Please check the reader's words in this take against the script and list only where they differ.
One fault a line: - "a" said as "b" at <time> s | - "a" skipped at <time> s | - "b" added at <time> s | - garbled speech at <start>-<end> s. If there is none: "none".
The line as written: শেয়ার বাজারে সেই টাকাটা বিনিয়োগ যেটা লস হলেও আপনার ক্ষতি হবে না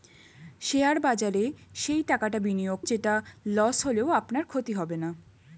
none